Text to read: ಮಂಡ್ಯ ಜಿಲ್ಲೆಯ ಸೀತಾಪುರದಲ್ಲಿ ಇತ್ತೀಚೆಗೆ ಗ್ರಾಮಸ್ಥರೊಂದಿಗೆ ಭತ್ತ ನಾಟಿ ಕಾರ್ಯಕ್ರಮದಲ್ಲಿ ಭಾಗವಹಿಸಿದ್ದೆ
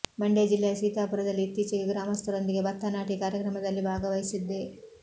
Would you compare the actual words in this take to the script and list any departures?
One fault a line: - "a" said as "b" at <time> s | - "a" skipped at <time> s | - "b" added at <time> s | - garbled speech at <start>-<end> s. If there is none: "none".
none